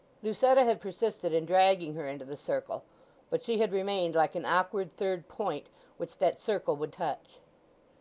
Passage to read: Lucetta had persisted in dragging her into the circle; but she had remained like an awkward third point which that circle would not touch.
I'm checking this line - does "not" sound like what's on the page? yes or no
no